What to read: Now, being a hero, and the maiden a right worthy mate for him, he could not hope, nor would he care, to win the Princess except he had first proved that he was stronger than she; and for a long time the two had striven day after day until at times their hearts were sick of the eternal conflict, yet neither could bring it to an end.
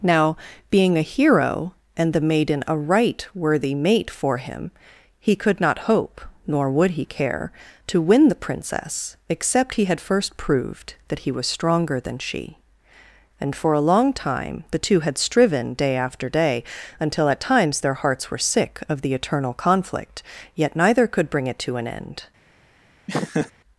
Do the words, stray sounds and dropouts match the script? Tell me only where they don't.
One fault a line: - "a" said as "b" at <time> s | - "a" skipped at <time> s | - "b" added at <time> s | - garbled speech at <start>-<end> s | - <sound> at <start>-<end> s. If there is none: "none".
- laugh at 23.1-23.5 s